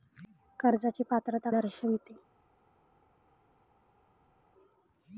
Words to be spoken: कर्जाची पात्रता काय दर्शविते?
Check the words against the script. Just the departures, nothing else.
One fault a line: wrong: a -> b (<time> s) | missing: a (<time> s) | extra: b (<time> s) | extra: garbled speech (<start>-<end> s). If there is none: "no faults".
missing: काय (1.5 s)